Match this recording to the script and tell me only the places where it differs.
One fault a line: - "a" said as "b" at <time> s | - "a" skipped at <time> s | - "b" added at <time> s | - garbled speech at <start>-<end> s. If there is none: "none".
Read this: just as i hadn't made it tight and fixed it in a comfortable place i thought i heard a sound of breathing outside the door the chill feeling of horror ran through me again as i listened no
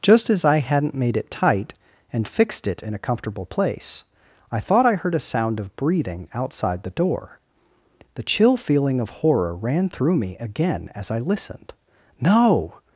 none